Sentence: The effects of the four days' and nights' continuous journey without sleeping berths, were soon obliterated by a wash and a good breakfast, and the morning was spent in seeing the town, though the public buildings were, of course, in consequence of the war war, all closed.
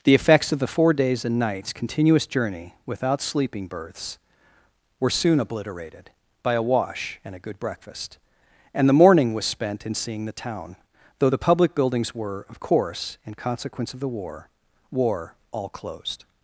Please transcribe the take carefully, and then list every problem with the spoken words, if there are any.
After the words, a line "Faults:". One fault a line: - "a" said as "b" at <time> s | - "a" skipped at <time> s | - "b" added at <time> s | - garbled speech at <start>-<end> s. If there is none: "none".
The effects of the four days' and nights' continuous journey without sleeping berths, were soon obliterated by a wash and a good breakfast, and the morning was spent in seeing the town, though the public buildings were, of course, in consequence of the war war, all closed.
Faults:
none